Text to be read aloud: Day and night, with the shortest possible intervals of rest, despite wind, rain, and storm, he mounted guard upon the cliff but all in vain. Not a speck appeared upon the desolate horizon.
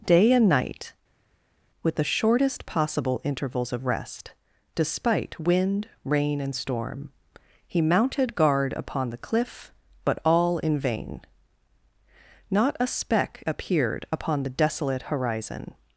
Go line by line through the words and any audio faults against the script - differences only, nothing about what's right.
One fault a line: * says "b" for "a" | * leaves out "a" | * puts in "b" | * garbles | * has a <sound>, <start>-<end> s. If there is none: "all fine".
all fine